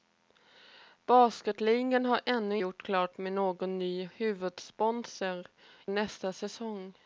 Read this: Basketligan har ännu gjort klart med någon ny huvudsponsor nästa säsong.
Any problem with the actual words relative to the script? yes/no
no